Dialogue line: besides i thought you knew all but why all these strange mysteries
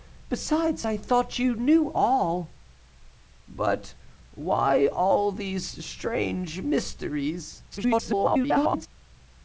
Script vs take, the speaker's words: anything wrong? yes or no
yes